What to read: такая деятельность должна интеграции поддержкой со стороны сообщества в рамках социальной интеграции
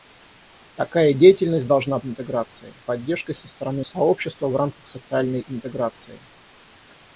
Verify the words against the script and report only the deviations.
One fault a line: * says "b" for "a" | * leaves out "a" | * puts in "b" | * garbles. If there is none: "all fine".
all fine